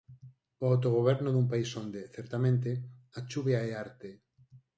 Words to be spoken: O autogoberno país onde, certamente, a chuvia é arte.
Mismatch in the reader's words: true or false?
true